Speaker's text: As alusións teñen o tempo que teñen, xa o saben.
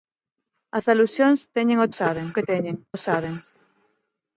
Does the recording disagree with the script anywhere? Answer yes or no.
yes